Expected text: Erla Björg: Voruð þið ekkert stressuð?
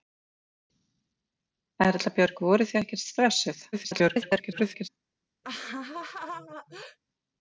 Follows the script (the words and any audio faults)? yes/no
no